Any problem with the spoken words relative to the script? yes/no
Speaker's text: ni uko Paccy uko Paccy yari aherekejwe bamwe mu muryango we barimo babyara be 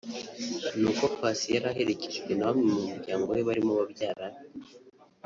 yes